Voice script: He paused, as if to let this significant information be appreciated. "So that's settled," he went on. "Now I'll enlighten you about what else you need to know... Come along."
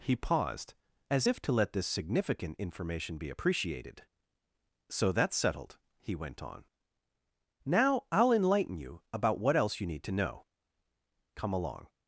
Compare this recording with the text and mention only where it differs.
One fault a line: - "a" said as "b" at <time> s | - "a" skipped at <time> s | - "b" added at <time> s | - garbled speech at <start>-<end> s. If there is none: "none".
none